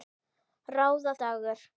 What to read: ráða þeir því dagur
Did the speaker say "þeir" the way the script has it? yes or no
no